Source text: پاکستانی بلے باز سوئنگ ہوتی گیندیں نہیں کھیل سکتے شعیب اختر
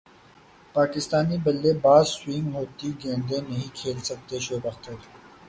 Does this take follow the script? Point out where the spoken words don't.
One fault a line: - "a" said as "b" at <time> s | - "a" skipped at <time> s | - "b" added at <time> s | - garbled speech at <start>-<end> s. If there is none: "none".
none